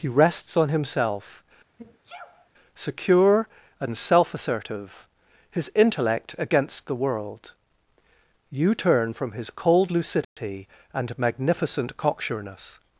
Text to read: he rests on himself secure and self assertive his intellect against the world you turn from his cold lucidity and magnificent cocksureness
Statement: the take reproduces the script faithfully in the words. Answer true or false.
true